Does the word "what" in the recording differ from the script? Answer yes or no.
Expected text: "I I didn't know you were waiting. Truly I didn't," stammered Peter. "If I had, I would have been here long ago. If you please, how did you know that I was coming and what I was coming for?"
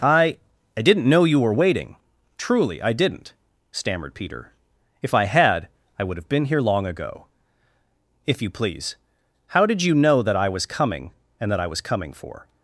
yes